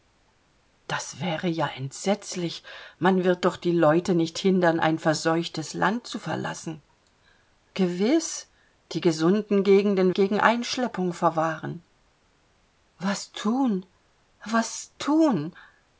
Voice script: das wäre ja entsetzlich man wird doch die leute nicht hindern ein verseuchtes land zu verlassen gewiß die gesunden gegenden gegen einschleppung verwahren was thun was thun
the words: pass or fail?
pass